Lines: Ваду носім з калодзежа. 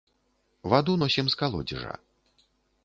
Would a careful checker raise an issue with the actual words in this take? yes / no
no